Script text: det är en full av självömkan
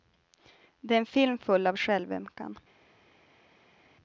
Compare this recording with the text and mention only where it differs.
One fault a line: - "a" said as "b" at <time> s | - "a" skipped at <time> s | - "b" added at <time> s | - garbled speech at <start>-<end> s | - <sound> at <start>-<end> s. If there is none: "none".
- "film" added at 1.1 s